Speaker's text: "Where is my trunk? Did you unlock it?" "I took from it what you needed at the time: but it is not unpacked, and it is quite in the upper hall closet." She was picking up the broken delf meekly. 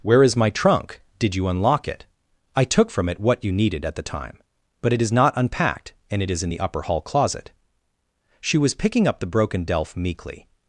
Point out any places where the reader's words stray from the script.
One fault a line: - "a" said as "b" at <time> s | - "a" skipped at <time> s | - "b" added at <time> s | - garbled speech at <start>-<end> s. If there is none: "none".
- "quite" skipped at 6.4 s